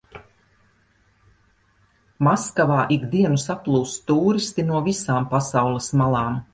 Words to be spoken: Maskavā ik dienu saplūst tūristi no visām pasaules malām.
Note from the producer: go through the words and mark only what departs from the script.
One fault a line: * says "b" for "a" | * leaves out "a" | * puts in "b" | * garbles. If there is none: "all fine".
all fine